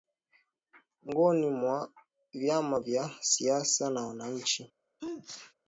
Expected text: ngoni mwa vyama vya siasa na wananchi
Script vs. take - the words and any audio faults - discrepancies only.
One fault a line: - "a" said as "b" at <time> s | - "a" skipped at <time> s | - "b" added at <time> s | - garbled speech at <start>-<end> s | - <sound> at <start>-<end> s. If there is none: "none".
- sneeze at 5.0-5.5 s